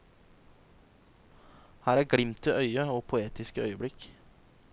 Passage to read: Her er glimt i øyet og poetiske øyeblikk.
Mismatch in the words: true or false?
false